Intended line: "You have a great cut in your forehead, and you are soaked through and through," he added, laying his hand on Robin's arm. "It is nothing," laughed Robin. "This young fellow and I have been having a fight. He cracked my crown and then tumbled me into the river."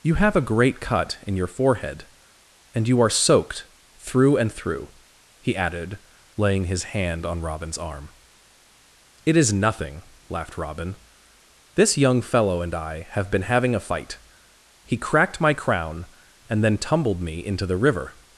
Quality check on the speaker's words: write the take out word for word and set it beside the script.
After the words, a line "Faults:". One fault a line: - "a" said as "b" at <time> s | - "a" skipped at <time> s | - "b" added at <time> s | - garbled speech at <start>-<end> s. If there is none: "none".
"You have a great cut in your forehead, and you are soaked through and through," he added, laying his hand on Robin's arm. "It is nothing," laughed Robin. "This young fellow and I have been having a fight. He cracked my crown and then tumbled me into the river."
Faults:
none